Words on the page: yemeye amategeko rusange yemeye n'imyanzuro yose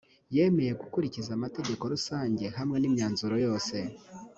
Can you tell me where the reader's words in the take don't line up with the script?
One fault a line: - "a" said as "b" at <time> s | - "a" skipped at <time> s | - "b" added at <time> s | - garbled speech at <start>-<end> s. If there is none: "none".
- "gukurikiza" added at 0.8 s
- "yemeye" said as "hamwe" at 2.6 s